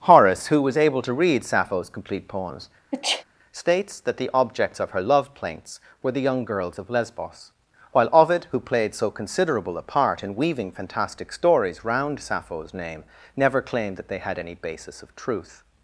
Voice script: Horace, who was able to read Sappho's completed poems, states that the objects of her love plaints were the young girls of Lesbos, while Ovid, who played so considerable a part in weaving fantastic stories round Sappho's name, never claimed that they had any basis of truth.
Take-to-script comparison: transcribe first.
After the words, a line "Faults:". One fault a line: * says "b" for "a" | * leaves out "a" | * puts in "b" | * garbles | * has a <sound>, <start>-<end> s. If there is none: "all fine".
Horace, who was able to read Sappho's complete poems, states that the objects of her love plaints were the young girls of Lesbos, while Ovid, who played so considerable a part in weaving fantastic stories round Sappho's name, never claimed that they had any basis of truth.
Faults:
* says "complete" for "completed"
* has a sneeze, 2.9-3.2 s